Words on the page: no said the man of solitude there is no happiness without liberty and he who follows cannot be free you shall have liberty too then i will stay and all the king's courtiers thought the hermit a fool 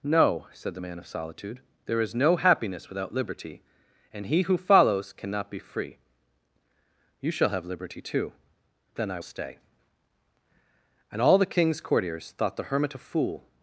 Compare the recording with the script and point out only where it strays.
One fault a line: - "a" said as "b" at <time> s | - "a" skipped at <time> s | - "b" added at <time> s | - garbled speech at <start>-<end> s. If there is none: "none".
- "will" skipped at 9.2 s